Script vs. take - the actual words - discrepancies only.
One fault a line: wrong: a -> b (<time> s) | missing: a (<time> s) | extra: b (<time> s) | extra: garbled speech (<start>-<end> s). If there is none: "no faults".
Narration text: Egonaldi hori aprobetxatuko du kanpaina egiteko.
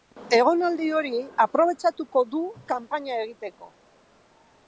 no faults